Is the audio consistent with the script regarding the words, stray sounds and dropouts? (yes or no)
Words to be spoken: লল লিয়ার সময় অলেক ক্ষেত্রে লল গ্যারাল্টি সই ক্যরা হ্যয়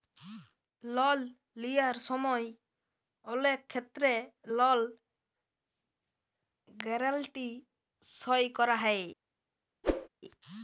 no